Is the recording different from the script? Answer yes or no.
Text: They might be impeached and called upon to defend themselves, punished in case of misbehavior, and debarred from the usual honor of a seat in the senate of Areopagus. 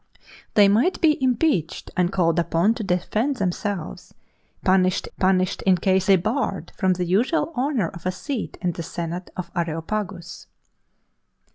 yes